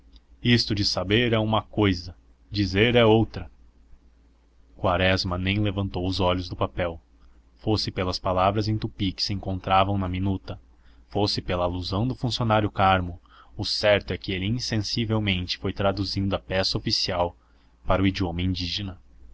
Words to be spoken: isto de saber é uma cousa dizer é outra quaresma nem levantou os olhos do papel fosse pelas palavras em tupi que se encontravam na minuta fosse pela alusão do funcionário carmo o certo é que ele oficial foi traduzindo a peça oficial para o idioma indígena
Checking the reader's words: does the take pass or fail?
fail